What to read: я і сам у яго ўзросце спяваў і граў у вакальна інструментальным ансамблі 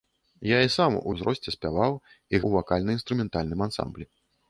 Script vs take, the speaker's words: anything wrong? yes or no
yes